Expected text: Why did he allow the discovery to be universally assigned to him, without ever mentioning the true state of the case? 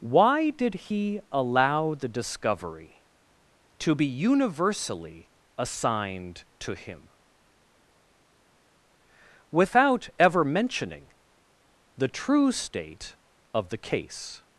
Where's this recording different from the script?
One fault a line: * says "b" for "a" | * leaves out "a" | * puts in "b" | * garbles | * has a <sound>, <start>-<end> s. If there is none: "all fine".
all fine